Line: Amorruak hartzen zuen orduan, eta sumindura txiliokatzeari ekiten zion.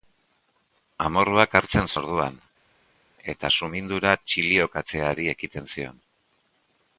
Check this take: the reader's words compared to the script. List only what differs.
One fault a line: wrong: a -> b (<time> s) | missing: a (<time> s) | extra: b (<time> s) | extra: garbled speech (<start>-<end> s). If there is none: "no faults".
missing: zuen (1.9 s)